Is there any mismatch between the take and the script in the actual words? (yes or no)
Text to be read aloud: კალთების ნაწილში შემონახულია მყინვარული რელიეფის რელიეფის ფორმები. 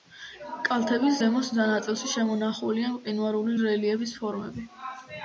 yes